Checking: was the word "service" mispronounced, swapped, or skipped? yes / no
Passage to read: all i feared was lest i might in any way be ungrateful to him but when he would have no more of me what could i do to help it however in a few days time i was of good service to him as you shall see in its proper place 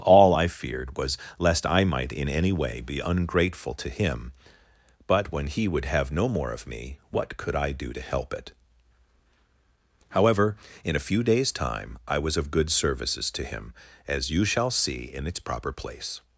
yes